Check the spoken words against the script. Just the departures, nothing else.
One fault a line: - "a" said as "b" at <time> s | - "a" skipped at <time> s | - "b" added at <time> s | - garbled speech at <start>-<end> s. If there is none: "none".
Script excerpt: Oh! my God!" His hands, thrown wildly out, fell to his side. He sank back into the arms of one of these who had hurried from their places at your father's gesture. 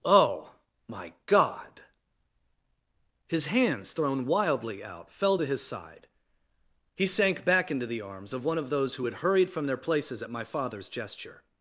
- "these" said as "those" at 8.7 s
- "your" said as "my" at 10.3 s